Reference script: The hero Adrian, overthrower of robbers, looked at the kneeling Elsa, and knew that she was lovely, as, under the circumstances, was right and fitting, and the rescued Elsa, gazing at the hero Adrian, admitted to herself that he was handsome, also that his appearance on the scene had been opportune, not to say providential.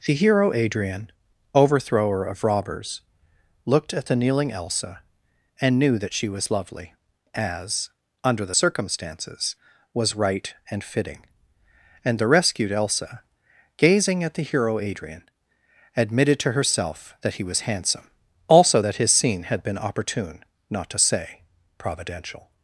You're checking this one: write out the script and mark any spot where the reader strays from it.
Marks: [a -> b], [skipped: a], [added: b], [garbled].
The hero Adrian, overthrower of robbers, looked at the kneeling Elsa, and knew that she was lovely, as, under the circumstances, was right and fitting, and the rescued Elsa, gazing at the hero Adrian, admitted to herself that he was handsome, also that his [skipped: appearance on the] scene had been opportune, not to say providential.